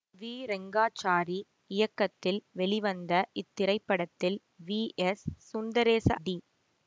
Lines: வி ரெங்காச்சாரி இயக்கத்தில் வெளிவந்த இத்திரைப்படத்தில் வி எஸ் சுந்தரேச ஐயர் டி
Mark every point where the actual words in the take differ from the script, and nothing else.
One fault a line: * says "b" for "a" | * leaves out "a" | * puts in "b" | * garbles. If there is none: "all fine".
* leaves out "ஐயர்"